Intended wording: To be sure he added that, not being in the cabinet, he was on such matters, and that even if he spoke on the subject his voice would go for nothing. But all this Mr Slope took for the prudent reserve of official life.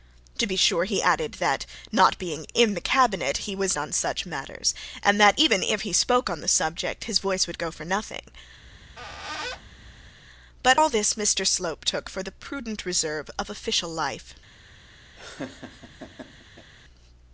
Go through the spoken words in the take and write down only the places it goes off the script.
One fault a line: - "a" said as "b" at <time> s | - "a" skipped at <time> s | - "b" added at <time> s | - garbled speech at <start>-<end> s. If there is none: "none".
none